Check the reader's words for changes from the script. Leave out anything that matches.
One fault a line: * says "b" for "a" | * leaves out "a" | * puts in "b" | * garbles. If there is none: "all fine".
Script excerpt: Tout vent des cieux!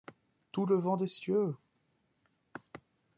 * puts in "le"